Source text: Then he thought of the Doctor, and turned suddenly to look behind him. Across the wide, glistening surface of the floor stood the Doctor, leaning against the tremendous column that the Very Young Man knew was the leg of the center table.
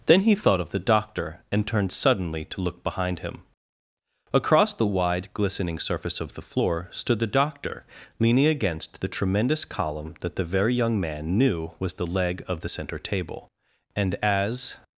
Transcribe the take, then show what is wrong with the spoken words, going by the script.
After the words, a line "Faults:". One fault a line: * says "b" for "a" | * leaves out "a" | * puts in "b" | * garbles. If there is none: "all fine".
Then he thought of the Doctor, and turned suddenly to look behind him. Across the wide, glistening surface of the floor stood the Doctor, leaning against the tremendous column that the Very Young Man knew was the leg of the center table. And as
Faults:
* puts in "And as"